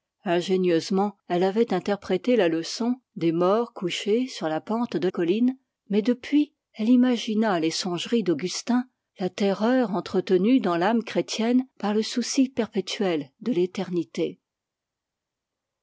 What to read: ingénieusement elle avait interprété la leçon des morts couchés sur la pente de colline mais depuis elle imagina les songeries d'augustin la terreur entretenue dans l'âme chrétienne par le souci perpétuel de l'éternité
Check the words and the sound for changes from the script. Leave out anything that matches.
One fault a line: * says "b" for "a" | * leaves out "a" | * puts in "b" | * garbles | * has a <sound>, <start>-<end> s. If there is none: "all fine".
all fine